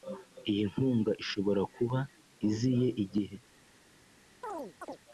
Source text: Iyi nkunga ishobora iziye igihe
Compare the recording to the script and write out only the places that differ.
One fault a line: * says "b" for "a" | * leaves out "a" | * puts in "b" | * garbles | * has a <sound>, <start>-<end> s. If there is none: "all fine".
* puts in "kuba"
* has a chirp, 4.4-5.0 s